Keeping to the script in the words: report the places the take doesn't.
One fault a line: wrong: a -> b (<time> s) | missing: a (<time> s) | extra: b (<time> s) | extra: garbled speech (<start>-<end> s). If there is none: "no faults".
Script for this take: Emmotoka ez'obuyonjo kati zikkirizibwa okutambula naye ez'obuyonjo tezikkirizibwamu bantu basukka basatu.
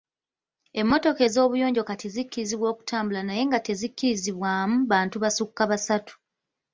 wrong: ez'obuyonjo -> nga (3.5 s)